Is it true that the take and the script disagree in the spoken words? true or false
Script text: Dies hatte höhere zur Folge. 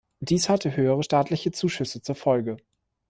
true